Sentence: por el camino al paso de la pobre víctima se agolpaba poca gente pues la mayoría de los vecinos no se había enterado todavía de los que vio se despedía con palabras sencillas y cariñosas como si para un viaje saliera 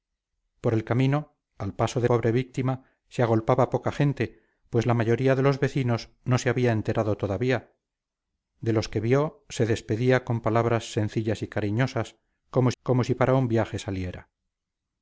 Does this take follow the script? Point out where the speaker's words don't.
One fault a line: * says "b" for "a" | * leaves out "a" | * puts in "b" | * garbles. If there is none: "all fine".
* leaves out "la"
* puts in "como"